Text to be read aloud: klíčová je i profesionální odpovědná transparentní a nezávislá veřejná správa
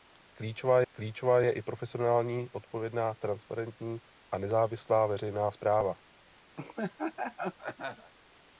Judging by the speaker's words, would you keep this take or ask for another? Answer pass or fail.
fail